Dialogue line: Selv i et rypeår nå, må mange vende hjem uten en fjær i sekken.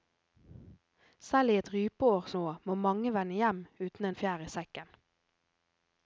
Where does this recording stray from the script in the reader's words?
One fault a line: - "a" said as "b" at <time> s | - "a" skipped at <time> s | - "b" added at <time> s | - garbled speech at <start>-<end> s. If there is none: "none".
none